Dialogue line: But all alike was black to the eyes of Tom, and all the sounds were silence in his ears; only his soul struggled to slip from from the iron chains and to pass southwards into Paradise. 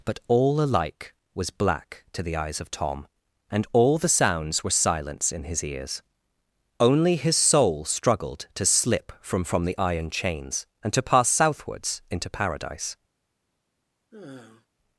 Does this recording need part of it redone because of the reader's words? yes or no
no